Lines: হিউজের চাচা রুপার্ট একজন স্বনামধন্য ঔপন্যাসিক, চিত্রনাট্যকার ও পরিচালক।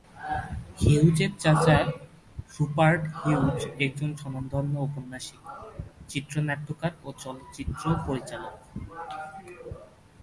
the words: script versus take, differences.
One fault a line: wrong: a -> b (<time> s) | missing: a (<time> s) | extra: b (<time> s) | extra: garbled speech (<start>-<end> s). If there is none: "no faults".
extra: হিউজ (3.2 s)
extra: চলচ্চিত্র (7.2 s)